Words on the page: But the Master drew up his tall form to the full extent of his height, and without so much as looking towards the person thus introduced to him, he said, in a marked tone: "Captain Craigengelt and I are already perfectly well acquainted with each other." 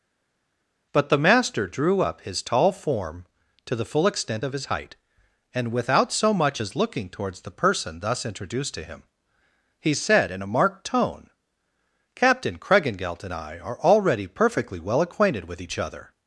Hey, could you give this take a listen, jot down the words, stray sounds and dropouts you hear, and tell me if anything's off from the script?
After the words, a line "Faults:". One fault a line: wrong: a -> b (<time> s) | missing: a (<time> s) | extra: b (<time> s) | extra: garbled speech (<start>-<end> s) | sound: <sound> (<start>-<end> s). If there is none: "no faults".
But the Master drew up his tall form to the full extent of his height, and without so much as looking towards the person thus introduced to him, he said, in a marked tone: "Captain Craigengelt and I are already perfectly well acquainted with each other."
Faults:
no faults